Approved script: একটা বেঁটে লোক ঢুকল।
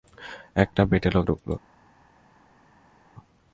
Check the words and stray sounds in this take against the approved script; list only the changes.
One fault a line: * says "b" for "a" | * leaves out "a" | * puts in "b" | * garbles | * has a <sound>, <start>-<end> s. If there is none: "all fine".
all fine